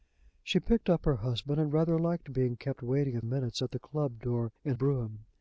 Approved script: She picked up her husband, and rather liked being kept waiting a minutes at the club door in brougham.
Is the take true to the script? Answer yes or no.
yes